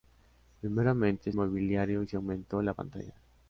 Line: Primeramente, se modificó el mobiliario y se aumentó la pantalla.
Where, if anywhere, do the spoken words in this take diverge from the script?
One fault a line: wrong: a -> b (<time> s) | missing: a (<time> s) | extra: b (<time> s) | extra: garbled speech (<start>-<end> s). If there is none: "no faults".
missing: se modificó el (1.3 s)